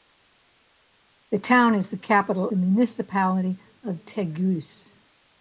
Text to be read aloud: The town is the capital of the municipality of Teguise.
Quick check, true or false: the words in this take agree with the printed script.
false